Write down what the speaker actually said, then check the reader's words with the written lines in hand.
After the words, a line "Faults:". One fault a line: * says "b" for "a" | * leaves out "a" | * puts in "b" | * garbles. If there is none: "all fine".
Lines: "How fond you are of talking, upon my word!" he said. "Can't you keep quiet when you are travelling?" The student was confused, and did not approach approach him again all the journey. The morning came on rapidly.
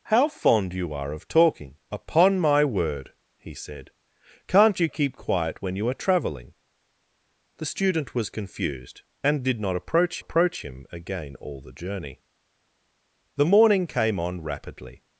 "How fond you are of talking, upon my word!" he said. "Can't you keep quiet when you are travelling?" The student was confused, and did not approach approach him again all the journey. The morning came on rapidly.
Faults:
all fine